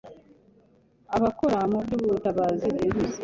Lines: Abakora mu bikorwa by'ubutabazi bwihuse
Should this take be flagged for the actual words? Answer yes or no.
yes